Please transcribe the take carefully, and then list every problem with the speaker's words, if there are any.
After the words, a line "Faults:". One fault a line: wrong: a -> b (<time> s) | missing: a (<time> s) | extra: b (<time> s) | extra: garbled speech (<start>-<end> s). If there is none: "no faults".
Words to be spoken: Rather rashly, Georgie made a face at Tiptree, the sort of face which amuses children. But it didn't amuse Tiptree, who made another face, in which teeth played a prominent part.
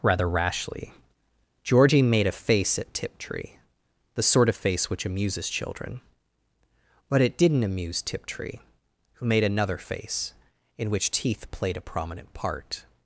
Rather rashly, Georgie made a face at Tiptree, the sort of face which amuses children. But it didn't amuse Tiptree, who made another face, in which teeth played a prominent part.
Faults:
no faults